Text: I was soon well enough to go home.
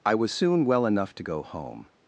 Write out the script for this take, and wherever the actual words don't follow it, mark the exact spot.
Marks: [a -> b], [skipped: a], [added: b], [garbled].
I was soon well enough to go home.